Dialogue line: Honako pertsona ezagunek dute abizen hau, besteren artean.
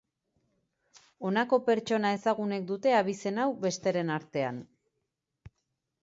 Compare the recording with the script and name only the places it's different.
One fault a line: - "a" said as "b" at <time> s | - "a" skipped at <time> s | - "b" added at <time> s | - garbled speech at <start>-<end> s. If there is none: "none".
none